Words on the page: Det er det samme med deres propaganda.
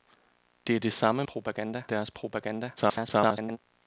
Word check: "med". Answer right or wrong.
wrong